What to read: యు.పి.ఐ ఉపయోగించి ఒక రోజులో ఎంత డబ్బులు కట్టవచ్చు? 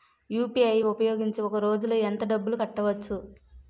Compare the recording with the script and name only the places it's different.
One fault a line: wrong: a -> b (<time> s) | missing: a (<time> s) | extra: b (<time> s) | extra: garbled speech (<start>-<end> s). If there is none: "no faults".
no faults